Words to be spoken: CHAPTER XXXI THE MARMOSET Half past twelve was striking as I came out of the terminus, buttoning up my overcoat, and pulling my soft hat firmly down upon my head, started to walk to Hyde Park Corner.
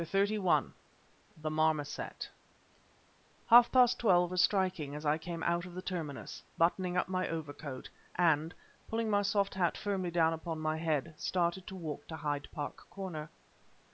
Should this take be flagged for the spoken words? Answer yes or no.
no